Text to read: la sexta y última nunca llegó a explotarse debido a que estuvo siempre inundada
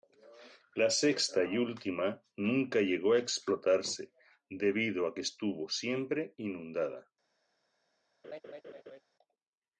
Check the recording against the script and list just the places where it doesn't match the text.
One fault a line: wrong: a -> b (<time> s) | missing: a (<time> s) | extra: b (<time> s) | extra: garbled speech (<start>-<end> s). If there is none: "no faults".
no faults